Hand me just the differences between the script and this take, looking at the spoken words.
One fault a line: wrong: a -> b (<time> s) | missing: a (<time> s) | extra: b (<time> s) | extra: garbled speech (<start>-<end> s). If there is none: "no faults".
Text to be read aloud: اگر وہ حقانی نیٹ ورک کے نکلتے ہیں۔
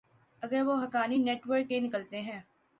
no faults